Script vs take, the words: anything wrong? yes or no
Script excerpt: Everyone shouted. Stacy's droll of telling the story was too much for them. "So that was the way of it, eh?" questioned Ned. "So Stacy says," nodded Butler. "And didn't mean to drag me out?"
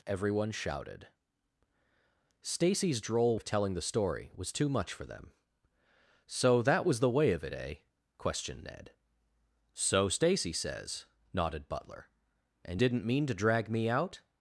no